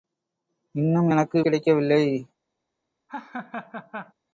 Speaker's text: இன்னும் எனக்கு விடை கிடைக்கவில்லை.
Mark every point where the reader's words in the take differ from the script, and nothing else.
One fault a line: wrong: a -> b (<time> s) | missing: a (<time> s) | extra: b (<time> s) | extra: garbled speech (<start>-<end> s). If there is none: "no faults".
missing: விடை (1.4 s)